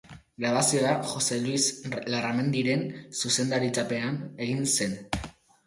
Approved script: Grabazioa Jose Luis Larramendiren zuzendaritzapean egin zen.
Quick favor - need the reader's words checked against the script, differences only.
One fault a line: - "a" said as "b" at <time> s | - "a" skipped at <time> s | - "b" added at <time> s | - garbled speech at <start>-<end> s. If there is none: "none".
none